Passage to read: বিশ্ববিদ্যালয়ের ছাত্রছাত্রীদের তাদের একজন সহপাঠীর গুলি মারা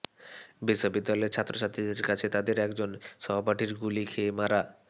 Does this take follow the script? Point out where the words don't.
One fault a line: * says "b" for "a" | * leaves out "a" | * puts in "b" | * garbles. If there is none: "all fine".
* puts in "কাছে"
* puts in "খেয়ে"